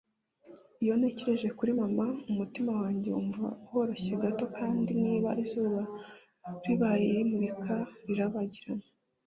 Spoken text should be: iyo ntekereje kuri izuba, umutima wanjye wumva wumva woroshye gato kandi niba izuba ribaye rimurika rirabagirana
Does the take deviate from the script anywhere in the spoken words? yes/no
yes